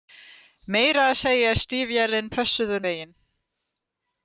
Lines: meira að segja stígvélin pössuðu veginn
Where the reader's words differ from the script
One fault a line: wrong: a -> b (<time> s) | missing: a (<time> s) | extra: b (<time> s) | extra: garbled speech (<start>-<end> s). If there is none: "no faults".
no faults